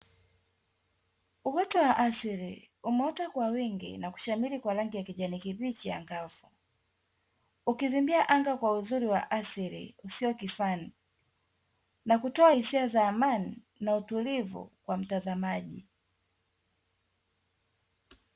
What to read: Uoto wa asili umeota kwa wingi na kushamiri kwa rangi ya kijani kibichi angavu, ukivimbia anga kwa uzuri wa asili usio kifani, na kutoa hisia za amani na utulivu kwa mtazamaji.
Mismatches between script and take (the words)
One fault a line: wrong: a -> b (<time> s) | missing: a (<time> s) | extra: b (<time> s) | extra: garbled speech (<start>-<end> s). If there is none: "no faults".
no faults